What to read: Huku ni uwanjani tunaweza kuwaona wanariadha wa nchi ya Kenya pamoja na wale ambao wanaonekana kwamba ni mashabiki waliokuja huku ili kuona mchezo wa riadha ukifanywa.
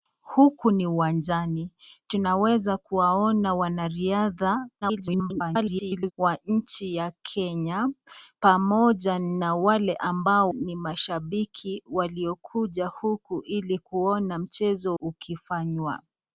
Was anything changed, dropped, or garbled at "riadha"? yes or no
yes